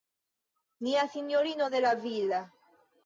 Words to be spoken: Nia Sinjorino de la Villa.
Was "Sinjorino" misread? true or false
false